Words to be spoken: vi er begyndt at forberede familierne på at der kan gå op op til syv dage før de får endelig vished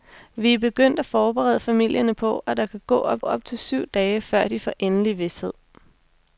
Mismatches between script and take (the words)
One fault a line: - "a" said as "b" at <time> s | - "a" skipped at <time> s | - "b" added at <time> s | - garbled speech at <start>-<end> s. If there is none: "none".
none